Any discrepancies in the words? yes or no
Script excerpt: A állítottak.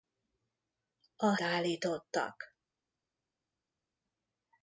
no